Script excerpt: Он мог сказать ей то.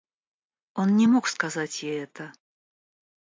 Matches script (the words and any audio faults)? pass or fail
fail